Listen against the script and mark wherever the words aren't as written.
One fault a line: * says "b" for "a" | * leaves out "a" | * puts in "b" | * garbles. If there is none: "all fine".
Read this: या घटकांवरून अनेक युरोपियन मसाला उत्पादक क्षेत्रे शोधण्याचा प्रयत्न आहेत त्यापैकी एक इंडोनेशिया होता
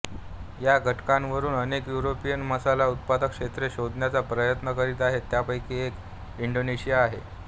* puts in "करीत"
* says "आहे" for "होता"